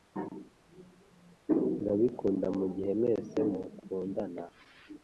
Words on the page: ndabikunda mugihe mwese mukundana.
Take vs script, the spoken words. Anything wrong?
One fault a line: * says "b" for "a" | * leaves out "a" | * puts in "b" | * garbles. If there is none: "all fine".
all fine